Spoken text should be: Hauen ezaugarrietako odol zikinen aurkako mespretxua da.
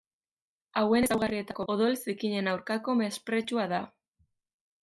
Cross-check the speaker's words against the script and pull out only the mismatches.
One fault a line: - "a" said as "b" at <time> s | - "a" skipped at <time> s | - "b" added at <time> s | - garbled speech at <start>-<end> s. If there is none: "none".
none